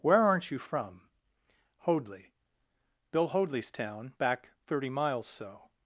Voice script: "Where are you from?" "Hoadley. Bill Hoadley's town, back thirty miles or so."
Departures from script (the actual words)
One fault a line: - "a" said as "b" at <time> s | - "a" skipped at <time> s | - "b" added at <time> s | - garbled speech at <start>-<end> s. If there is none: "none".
- "are" said as "aren't" at 0.2 s
- "or" skipped at 5.3 s